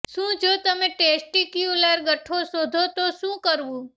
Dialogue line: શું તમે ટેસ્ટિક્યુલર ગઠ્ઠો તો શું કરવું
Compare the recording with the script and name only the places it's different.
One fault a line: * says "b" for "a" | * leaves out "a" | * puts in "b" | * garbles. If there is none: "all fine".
* puts in "જો"
* puts in "શોધો"